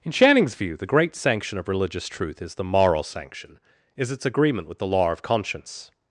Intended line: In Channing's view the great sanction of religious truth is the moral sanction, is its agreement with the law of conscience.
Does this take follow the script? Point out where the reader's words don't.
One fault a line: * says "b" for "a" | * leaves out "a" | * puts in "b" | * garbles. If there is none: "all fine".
all fine